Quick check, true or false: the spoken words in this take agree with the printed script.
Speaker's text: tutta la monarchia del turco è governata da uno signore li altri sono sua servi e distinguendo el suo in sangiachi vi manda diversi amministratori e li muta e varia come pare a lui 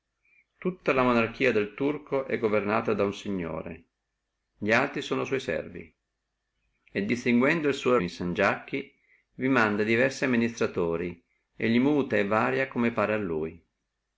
true